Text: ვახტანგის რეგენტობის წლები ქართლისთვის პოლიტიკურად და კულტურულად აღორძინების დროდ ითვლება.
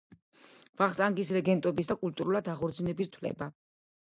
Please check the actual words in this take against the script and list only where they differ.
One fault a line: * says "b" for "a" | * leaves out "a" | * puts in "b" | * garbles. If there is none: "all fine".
* leaves out "წლები ქართლისთვის პოლიტიკურად"
* leaves out "დროდ"